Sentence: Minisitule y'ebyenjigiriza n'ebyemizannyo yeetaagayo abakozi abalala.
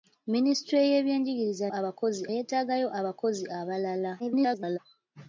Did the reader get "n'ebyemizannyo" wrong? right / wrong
wrong